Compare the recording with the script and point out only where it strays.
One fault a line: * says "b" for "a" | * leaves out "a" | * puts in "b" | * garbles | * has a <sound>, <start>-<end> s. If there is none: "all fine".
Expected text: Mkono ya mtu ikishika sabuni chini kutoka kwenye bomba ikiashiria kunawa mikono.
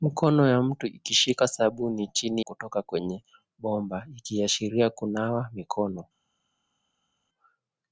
all fine